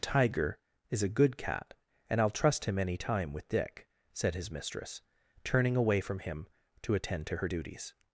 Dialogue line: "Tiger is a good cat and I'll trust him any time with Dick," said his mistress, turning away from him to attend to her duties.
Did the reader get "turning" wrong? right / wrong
right